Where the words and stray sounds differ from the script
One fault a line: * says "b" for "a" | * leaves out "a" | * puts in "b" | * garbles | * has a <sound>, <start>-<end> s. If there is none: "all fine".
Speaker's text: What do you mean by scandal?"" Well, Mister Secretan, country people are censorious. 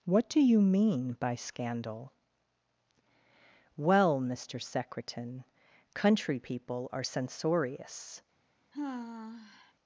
* has a sigh, 8.7-9.7 s